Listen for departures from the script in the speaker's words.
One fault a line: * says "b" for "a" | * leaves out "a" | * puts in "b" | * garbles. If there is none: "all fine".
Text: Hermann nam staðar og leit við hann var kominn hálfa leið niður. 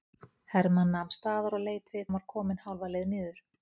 all fine